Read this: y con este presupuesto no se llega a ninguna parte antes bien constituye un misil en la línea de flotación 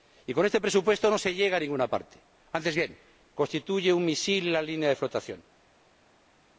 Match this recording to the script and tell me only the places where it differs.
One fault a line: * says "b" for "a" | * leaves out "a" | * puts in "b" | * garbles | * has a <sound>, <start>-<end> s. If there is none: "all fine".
all fine